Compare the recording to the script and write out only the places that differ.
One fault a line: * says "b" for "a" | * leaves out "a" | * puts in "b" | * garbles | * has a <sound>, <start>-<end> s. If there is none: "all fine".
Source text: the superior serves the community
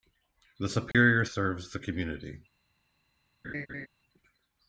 * has a dropout, 0.9-0.9 s
* has a laugh, 3.4-3.9 s